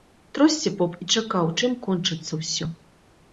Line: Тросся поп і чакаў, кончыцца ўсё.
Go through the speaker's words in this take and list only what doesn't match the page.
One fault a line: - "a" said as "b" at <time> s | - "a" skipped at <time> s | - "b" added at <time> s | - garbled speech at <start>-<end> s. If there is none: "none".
- "чым" added at 1.6 s